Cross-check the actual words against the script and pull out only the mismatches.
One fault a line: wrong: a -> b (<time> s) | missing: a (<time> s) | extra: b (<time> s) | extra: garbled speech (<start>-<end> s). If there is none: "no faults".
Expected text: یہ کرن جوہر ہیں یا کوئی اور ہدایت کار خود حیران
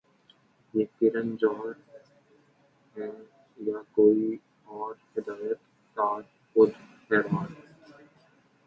no faults